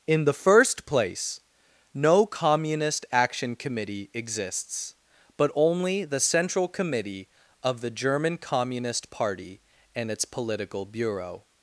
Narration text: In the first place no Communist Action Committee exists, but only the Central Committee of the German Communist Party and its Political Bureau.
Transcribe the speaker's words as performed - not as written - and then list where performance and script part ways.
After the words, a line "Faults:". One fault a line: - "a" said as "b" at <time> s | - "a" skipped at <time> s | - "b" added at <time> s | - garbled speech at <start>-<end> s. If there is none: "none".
In the first place no Communist Action Committee exists, but only the Central Committee of the German Communist Party and its Political Bureau.
Faults:
none